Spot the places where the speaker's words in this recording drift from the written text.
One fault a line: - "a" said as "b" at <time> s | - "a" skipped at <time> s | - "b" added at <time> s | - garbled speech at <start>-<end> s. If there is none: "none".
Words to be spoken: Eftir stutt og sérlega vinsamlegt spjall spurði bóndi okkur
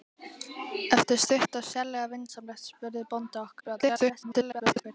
- "spjall" skipped at 2.7 s
- garbled speech at 3.6-4.8 s